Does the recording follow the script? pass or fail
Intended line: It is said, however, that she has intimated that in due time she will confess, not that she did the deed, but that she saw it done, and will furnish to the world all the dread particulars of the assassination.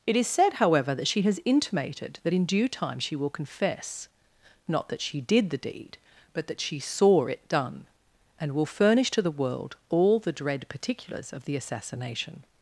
pass